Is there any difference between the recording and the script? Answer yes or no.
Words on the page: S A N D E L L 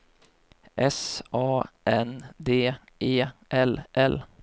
no